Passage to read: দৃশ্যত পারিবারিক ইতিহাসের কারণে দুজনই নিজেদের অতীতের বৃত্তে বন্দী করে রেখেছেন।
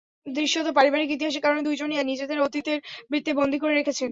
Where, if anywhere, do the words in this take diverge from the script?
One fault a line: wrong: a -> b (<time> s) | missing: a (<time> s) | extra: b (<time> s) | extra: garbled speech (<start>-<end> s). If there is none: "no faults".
no faults